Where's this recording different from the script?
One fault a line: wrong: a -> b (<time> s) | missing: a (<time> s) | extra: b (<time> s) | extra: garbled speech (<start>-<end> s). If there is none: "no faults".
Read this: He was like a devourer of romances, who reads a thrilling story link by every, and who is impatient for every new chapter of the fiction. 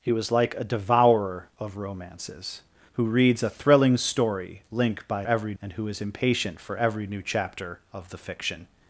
no faults